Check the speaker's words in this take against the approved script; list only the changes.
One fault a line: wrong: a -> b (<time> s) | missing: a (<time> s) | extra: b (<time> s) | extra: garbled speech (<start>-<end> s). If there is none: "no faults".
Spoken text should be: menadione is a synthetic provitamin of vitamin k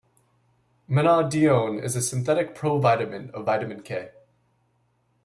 no faults